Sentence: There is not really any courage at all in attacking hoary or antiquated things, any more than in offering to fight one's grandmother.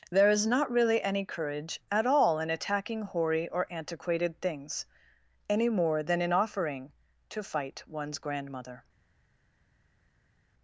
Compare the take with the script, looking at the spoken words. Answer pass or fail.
pass